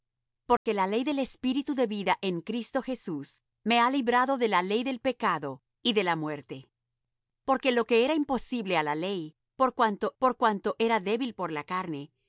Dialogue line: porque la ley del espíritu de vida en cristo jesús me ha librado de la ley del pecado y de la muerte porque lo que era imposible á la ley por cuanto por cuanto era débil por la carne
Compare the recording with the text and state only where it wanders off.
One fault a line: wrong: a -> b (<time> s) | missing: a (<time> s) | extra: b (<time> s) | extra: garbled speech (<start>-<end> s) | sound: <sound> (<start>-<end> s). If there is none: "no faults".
sound: dropout (0.6-0.7 s)